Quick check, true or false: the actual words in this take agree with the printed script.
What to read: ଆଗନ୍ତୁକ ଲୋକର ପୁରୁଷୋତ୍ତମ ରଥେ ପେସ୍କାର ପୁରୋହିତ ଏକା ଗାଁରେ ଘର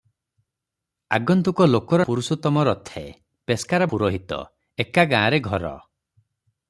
true